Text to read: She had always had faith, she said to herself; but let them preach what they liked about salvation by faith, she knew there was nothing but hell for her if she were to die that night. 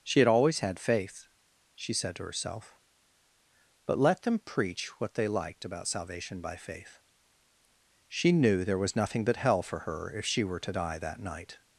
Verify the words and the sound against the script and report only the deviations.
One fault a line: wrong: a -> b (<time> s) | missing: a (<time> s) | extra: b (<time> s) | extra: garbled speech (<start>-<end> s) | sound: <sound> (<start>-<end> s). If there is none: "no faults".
no faults